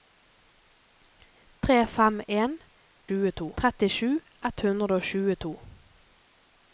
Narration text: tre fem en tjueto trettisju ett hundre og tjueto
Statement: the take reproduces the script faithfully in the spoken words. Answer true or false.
true